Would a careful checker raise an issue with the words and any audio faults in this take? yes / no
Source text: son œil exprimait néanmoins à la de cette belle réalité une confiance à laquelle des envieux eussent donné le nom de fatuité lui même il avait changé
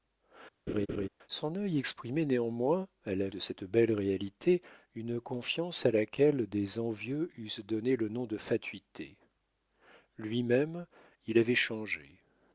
yes